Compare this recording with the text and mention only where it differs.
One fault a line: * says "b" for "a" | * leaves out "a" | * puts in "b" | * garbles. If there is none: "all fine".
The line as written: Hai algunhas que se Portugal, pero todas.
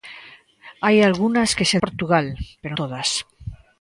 all fine